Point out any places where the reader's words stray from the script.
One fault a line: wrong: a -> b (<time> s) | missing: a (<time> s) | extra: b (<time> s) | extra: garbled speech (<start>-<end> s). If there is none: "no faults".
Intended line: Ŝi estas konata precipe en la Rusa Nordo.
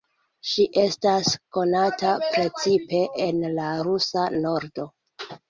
no faults